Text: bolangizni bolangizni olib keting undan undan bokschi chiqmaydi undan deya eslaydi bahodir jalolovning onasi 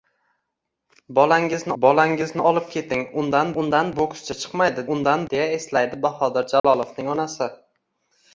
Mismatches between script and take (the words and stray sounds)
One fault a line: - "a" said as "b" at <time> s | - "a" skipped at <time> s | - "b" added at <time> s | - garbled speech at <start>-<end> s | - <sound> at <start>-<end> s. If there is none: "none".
- dropout at 6.6-6.6 s